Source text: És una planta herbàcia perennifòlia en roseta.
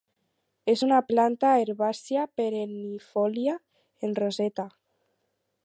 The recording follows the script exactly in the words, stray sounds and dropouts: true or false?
true